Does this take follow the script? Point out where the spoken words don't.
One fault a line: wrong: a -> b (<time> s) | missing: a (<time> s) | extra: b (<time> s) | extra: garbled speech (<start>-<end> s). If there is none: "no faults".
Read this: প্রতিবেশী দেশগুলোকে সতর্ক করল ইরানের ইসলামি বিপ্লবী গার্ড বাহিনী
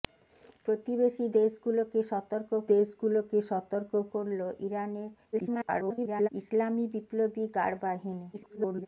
extra: দেশগুলোকে সতর্ক (2.7 s)
extra: garbled speech (5.3-6.3 s)
extra: garbled speech (8.3-8.9 s)